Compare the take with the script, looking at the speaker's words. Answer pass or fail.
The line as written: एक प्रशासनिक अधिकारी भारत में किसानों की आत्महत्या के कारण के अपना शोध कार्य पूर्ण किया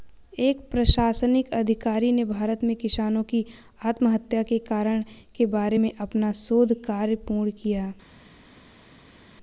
fail